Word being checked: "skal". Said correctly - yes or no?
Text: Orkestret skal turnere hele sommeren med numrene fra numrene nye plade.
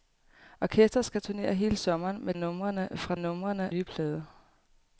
yes